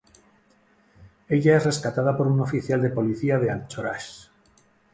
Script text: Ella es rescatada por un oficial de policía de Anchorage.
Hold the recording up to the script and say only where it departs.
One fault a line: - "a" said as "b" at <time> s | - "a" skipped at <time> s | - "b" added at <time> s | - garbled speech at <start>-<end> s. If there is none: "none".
none